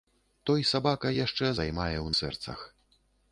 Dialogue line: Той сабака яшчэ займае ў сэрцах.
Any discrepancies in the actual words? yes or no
no